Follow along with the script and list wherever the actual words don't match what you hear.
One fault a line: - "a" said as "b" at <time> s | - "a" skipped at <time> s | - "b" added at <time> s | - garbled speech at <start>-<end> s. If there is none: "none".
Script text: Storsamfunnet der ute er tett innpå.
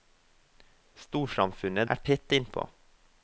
- "der ute" skipped at 1.9 s